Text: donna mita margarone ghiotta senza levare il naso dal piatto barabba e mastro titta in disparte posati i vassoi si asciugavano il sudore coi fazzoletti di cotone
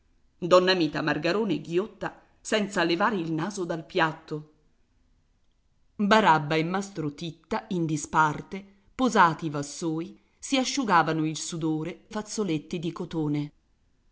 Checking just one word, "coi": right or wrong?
wrong